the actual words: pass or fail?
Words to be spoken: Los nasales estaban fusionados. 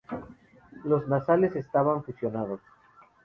pass